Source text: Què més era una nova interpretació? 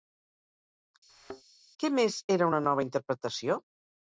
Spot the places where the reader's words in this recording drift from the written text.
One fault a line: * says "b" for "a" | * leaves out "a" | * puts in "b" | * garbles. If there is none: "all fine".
all fine